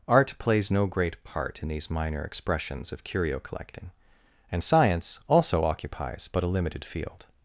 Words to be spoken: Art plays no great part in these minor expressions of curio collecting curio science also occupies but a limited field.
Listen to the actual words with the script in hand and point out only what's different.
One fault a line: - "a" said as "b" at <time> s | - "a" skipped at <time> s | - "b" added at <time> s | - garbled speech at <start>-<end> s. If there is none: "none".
- "curio" said as "and" at 4.5 s